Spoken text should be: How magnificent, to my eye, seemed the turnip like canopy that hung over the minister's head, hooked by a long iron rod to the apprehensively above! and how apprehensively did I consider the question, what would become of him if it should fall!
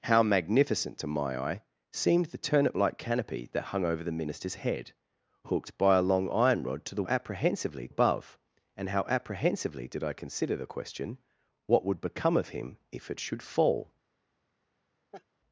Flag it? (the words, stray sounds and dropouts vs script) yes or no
yes